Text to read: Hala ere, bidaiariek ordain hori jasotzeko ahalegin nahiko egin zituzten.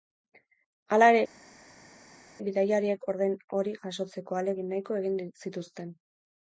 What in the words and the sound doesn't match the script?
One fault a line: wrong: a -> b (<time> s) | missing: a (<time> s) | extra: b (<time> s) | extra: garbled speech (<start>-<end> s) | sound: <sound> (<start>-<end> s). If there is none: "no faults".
no faults